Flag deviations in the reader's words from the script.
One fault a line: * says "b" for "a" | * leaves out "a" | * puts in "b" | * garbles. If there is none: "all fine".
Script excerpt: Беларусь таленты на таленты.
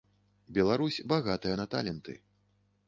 * says "багатая" for "таленты"